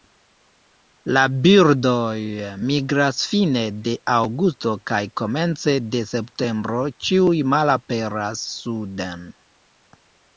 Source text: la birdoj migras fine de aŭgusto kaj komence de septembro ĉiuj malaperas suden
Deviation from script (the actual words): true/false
false